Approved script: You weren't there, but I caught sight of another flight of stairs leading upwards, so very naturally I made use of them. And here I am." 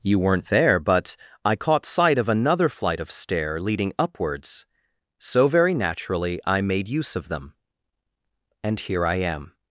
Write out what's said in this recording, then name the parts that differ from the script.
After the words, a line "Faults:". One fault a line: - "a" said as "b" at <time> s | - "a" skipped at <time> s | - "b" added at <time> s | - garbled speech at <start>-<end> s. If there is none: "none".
You weren't there, but I caught sight of another flight of stair leading upwards, so very naturally I made use of them. And here I am."
Faults:
- "stairs" said as "stair" at 3.1 s